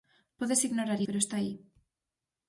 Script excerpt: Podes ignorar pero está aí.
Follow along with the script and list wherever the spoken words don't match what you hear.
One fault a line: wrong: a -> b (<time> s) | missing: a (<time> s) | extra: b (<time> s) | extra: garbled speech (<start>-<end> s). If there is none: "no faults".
no faults